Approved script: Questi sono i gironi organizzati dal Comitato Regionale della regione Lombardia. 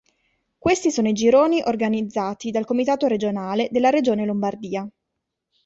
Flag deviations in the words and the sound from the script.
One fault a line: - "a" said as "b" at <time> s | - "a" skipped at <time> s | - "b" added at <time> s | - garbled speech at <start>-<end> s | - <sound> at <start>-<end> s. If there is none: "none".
none